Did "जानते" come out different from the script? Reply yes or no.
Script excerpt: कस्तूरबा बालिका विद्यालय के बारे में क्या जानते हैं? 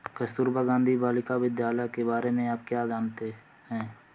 no